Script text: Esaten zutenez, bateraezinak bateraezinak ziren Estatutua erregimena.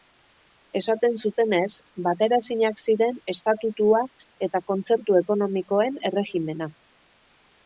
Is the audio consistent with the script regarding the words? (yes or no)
no